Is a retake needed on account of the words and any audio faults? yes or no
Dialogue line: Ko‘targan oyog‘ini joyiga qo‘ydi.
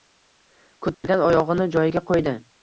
yes